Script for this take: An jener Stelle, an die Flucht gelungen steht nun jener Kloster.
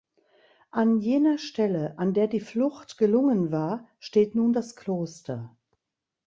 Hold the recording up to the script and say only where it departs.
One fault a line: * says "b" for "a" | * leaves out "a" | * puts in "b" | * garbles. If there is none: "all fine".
* puts in "der"
* puts in "war"
* says "das" for "jener"